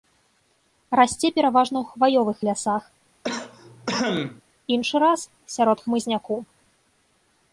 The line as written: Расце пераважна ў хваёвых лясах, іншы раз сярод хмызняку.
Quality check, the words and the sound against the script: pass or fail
fail